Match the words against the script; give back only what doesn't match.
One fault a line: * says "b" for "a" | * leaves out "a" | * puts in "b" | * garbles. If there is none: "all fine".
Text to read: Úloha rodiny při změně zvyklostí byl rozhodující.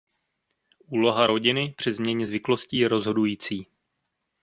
* says "je" for "byl"